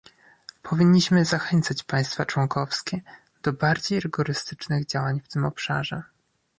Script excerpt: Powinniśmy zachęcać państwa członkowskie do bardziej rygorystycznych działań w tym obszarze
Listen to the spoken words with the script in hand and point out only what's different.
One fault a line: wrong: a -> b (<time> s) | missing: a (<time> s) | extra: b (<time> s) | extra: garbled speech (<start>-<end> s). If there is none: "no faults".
no faults